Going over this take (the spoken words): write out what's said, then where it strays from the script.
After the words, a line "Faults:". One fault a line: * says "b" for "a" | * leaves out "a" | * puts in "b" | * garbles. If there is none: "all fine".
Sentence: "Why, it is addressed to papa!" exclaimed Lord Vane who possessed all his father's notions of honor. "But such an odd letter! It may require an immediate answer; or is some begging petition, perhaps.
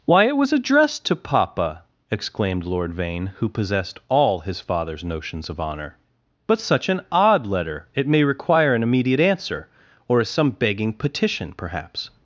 "Why, it was addressed to papa!" exclaimed Lord Vane who possessed all his father's notions of honor. "But such an odd letter! It may require an immediate answer; or is some begging petition, perhaps.
Faults:
* says "was" for "is"